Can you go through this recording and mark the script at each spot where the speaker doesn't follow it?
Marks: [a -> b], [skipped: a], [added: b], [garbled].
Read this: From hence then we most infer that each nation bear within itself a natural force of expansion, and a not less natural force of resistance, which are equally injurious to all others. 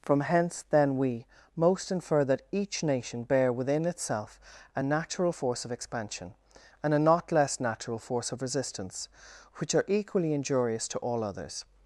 From hence then we most infer that each nation bear within itself a natural force of expansion, and a not less natural force of resistance, which are equally injurious to all others.